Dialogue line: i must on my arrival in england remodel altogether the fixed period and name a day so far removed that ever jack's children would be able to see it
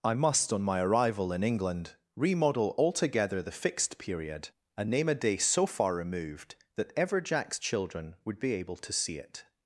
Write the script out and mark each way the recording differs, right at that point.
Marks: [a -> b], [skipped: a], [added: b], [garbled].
i must on my arrival in england remodel altogether the fixed period and name a day so far removed that ever jack's children would be able to see it